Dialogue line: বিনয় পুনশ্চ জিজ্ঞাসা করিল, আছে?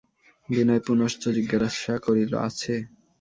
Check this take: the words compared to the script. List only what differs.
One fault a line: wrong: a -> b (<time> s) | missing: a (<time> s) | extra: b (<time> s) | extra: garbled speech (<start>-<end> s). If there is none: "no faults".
no faults